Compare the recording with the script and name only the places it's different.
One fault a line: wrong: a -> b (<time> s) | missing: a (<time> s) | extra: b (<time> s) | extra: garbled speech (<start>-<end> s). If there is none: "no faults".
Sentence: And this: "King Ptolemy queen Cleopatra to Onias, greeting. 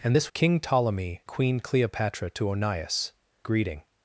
no faults